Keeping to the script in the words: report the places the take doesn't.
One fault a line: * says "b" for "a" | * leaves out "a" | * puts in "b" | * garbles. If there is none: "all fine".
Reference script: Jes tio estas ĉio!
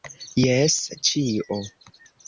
* leaves out "tio estas"